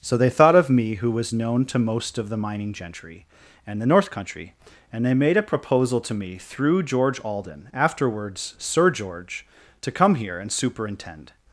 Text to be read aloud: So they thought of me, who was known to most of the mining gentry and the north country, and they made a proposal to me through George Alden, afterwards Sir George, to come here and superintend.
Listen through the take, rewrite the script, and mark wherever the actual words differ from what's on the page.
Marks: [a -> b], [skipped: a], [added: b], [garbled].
So they thought of me, who was known to most of the mining gentry and the north country, and they made a proposal to me through George Alden, afterwards Sir George, to come here and superintend.